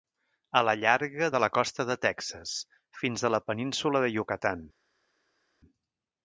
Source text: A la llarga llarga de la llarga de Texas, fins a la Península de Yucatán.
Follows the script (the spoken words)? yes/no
no